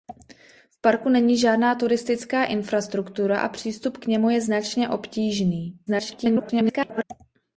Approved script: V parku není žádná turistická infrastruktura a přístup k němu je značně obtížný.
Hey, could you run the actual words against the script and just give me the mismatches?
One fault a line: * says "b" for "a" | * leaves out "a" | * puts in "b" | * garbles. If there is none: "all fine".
* garbles